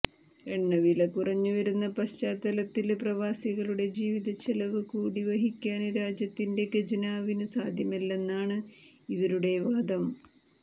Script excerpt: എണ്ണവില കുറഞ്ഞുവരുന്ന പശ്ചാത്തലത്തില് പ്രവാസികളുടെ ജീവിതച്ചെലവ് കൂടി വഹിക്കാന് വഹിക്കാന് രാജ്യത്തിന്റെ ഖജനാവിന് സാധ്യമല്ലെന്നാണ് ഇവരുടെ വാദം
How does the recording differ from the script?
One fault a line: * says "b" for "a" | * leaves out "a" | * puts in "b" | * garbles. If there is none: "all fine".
* leaves out "വഹിക്കാന്"